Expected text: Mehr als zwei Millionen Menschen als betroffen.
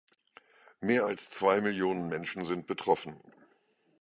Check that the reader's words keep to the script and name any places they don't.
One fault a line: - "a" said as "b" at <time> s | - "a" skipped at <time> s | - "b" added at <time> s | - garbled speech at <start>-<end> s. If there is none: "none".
- "als" said as "sind" at 2.4 s